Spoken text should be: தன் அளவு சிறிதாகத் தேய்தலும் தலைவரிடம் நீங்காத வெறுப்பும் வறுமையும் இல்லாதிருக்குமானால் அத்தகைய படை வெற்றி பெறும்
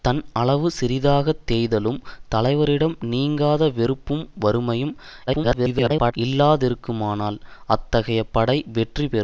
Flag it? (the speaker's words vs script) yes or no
yes